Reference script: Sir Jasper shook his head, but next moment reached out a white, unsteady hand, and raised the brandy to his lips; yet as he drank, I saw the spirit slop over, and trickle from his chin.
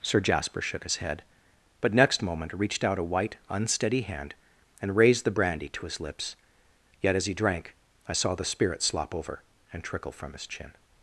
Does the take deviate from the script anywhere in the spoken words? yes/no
no